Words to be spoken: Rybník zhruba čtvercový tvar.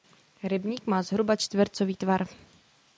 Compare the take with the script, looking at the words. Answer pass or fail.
fail